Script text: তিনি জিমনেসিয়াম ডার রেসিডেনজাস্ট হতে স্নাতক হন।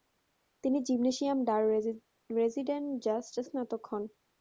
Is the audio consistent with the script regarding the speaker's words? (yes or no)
no